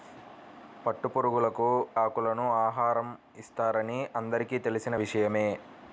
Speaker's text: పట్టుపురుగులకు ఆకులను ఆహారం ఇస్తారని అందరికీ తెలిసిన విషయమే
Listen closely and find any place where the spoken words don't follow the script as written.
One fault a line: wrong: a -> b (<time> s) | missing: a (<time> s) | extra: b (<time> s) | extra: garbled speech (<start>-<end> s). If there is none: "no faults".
no faults